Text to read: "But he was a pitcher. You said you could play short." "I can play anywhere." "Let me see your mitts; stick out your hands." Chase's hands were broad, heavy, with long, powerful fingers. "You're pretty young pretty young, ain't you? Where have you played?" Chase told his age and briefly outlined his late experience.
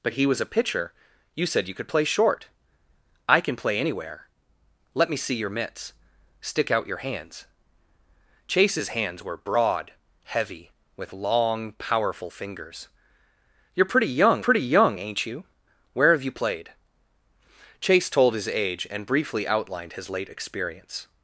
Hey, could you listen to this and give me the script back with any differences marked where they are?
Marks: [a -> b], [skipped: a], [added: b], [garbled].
"But he was a pitcher. You said you could play short." "I can play anywhere." "Let me see your mitts; stick out your hands." Chase's hands were broad, heavy, with long, powerful fingers. "You're pretty young pretty young, ain't you? Where have you played?" Chase told his age and briefly outlined his late experience.